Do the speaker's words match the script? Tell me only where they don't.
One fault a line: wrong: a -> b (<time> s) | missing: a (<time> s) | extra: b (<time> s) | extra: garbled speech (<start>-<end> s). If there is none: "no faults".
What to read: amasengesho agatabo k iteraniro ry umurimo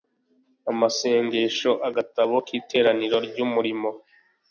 no faults